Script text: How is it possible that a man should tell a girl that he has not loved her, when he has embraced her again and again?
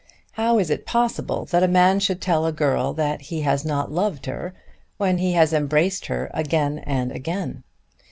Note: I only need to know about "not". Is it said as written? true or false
true